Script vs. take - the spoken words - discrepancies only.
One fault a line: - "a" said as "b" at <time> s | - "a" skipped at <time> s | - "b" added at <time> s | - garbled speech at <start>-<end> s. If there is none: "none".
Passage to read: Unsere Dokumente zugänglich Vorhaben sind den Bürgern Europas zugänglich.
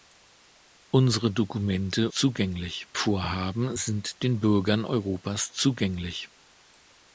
none